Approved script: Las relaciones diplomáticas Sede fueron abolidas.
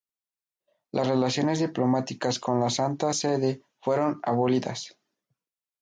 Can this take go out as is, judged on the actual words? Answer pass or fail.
fail